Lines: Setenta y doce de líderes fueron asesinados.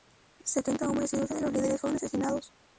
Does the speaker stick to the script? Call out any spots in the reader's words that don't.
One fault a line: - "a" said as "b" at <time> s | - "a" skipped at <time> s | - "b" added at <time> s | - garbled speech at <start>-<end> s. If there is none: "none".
- "hombres" added at 0.9 s
- "los" added at 1.4 s